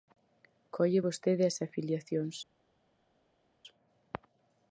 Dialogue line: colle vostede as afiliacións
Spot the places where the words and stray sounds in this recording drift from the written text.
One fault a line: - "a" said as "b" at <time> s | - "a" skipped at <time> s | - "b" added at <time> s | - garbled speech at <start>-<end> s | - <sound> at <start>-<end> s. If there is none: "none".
none